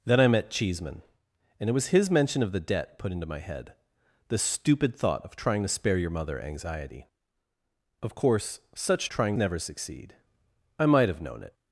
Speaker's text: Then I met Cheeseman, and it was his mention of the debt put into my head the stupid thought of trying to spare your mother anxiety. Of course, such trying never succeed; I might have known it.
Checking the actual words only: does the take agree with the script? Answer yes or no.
yes